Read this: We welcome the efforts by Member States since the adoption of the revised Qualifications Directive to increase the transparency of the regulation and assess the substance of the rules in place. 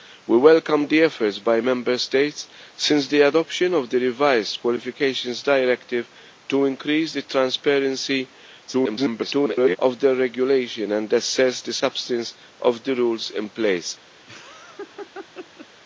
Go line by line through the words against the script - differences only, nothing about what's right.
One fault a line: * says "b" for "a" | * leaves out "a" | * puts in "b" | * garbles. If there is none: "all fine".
* garbles